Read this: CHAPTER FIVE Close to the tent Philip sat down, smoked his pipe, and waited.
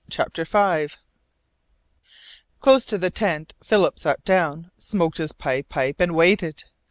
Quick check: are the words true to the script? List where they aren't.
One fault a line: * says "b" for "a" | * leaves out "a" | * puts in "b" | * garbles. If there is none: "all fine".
* puts in "pipe"